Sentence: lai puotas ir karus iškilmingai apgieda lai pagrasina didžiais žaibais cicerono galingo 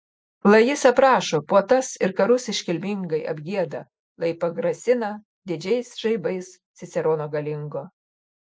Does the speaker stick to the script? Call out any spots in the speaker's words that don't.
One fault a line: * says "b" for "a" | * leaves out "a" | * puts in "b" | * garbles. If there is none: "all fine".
* puts in "jis aprašo"